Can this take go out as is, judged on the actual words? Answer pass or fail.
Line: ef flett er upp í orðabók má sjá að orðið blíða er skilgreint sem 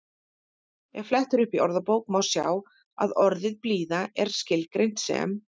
pass